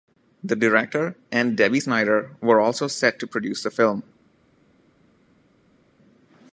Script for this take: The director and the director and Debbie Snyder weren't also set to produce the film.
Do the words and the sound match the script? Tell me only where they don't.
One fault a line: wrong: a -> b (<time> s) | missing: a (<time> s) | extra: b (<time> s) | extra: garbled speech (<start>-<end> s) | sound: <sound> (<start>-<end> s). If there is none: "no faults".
missing: the director and (1.6 s)
wrong: weren't -> were (2.4 s)